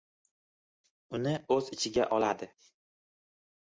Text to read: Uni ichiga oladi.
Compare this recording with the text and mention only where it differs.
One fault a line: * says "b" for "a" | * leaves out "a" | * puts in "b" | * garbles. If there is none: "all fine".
* puts in "o‘z"